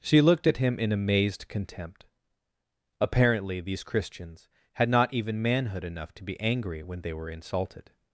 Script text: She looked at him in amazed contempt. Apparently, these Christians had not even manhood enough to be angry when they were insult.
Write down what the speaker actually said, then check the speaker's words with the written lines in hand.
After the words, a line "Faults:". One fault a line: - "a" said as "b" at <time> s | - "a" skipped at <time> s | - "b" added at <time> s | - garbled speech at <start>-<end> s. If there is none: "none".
She looked at him in amazed contempt. Apparently, these Christians had not even manhood enough to be angry when they were insulted.
Faults:
- "insult" said as "insulted" at 7.3 s